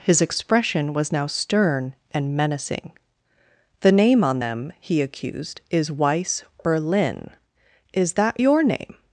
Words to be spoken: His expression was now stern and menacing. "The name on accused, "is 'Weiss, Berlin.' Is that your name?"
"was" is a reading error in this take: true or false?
false